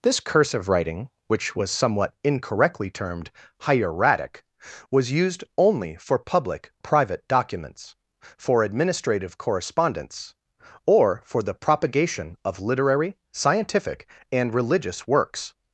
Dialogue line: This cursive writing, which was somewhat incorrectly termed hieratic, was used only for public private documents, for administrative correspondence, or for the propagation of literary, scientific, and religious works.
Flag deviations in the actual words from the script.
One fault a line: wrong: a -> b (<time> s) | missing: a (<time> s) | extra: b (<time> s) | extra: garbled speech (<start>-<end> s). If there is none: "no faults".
no faults